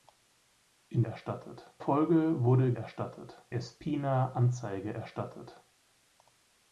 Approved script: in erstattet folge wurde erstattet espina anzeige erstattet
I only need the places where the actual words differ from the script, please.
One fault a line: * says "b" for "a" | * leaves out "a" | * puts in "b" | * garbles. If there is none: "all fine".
all fine